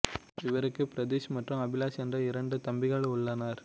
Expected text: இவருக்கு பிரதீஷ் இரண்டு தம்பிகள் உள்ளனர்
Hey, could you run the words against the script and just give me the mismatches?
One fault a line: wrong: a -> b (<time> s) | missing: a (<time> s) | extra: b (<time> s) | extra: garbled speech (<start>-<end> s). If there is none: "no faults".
extra: மற்றும் அபிலாஷ் என்ற (1.4 s)